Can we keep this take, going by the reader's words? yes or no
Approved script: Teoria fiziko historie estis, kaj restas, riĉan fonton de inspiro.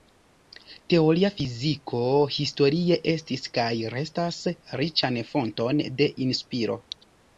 yes